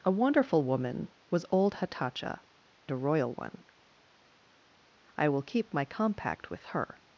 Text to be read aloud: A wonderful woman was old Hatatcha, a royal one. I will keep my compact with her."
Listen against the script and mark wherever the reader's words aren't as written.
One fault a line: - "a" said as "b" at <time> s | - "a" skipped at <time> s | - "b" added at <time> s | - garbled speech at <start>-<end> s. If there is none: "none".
none